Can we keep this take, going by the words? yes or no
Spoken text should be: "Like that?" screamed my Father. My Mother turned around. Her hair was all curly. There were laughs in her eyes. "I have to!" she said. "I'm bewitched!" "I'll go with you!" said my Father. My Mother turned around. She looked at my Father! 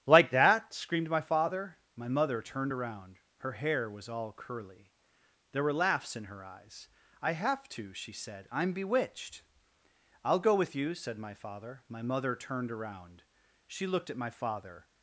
yes